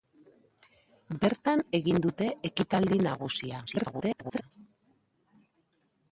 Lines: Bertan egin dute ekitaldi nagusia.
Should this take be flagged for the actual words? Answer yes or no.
yes